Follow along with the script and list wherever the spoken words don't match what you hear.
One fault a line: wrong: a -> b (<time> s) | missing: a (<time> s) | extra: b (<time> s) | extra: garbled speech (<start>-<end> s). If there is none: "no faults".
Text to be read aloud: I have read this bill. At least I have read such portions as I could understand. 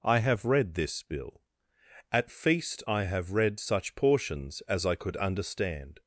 wrong: least -> feast (2.3 s)